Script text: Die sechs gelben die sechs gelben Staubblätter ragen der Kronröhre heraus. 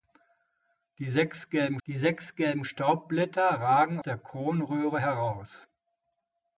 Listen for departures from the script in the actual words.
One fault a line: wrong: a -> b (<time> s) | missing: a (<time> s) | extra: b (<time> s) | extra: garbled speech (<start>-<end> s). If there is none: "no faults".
no faults